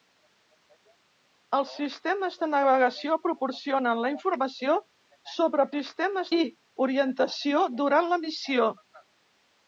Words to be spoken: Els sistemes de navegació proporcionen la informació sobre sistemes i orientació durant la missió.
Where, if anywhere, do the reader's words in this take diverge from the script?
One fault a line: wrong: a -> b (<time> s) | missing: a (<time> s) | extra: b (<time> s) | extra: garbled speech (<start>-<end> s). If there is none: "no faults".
no faults